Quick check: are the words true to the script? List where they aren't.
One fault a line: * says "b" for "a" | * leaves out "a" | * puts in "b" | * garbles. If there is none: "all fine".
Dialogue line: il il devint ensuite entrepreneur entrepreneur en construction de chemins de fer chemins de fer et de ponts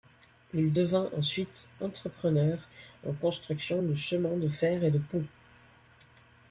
* leaves out "il"
* leaves out "entrepreneur"
* leaves out "chemins de fer"